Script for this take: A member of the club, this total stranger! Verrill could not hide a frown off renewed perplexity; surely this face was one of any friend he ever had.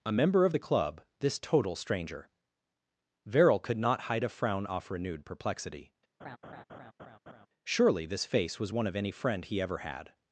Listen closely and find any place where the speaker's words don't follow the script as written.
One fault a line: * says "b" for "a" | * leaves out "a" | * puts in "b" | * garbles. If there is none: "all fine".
all fine